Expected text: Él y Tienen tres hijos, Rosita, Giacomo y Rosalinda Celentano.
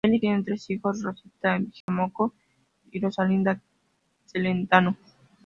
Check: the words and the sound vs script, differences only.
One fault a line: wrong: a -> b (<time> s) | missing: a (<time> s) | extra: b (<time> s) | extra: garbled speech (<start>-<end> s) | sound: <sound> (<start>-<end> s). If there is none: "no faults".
sound: dropout (1.8-1.9 s)